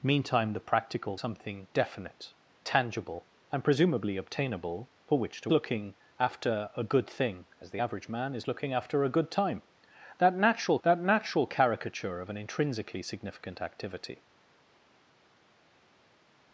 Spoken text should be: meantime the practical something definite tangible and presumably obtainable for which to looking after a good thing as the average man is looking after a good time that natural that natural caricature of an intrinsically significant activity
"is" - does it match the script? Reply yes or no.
yes